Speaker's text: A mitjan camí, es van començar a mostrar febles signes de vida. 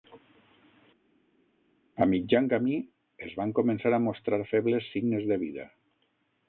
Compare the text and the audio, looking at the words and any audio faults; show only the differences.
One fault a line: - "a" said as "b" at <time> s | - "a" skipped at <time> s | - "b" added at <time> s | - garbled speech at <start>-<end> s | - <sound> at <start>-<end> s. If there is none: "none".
none